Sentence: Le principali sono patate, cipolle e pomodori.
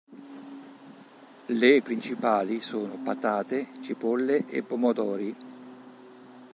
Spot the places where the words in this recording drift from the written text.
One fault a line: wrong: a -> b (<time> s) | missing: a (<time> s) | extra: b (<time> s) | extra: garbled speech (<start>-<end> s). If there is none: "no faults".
no faults